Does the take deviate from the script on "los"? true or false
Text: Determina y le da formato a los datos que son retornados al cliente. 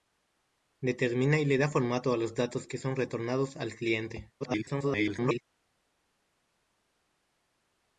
false